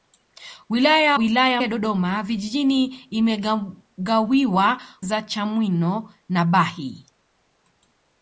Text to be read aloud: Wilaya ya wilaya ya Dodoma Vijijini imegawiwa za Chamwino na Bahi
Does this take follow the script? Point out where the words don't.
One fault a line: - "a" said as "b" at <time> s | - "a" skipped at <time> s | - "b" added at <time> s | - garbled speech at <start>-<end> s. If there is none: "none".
none